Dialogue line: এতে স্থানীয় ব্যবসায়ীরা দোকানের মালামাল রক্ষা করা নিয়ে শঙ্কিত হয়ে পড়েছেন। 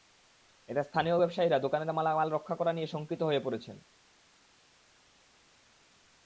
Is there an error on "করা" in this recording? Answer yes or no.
no